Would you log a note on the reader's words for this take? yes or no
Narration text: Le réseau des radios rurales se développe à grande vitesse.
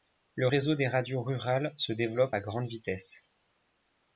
no